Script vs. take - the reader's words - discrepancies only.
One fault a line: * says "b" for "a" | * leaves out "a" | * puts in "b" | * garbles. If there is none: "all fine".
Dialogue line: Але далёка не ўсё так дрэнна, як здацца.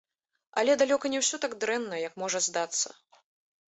* puts in "можа"